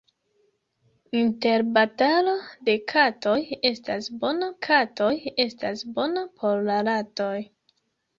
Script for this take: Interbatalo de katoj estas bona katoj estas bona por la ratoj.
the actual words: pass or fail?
pass